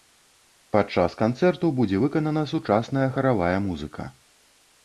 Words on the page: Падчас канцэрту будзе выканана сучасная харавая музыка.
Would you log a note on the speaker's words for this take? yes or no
no